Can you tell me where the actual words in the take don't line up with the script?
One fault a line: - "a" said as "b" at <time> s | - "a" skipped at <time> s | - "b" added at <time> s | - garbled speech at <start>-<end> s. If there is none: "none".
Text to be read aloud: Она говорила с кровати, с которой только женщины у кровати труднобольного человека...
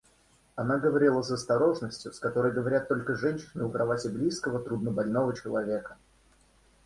- "кровати" said as "осторожностью" at 1.3 s
- "говорят" added at 2.5 s
- "близкого" added at 4.1 s